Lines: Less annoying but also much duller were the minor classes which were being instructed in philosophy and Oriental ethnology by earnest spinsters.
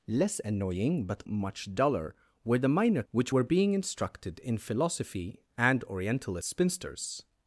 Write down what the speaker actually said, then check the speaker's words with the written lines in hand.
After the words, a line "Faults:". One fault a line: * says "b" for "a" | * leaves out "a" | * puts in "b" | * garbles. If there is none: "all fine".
Less annoying but much duller were the minor which were being instructed in philosophy and Oriental spinsters.
Faults:
* leaves out "also"
* leaves out "classes"
* leaves out "ethnology by earnest"